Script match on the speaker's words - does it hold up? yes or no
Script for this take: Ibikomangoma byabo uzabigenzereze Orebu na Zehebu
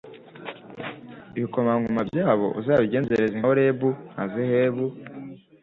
yes